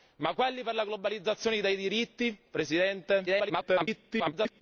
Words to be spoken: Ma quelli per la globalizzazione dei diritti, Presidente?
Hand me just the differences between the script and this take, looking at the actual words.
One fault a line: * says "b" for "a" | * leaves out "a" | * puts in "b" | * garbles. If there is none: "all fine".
* garbles